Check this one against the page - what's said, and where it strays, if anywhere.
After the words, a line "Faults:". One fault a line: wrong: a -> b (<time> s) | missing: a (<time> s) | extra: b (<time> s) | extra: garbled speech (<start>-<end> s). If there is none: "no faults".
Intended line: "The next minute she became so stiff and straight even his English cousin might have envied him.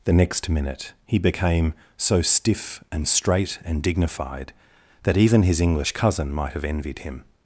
"The next minute he became so stiff and straight and dignified that even his English cousin might have envied him.
Faults:
wrong: she -> he (1.1 s)
extra: and dignified that (3.6 s)